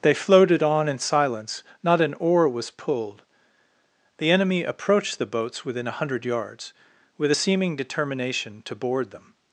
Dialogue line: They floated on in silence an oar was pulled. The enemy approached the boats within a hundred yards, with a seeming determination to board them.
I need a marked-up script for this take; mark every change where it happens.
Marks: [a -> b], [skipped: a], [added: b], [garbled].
They floated on in silence [added: not] an oar was pulled. The enemy approached the boats within a hundred yards, with a seeming determination to board them.